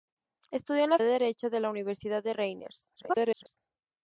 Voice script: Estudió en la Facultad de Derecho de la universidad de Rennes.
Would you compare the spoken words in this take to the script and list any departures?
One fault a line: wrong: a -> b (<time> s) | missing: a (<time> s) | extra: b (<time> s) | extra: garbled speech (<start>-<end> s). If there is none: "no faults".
missing: Facultad (1.0 s)
extra: garbled speech (3.0-3.6 s)